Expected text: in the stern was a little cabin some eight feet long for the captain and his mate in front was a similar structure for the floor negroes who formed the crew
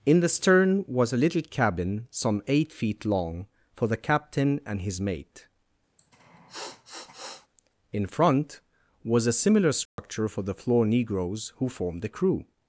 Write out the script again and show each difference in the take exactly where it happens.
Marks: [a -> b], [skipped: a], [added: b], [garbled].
in the stern was a little cabin some eight feet long for the captain and his mate in front was a similar structure for the floor negroes who formed the crew